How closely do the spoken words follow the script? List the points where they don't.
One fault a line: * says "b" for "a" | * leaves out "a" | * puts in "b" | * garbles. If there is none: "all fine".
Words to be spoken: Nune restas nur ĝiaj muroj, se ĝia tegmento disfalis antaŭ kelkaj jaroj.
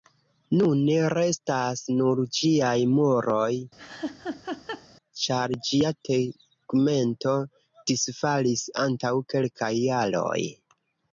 * says "ĉar" for "se"